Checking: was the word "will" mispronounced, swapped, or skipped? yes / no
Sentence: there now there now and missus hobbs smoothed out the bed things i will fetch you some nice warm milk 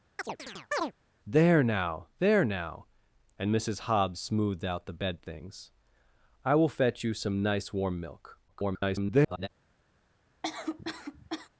no